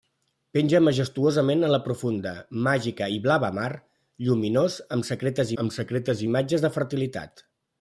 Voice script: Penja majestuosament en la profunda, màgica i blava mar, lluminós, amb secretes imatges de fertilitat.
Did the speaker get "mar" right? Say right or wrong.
right